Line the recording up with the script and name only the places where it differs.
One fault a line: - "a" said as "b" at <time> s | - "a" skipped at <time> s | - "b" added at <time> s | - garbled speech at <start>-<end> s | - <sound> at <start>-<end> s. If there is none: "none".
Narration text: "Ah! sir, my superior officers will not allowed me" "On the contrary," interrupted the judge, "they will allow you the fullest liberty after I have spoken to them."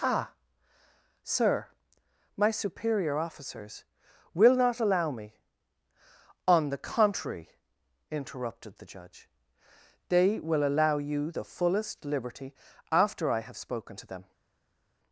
- "allowed" said as "allow" at 4.8 s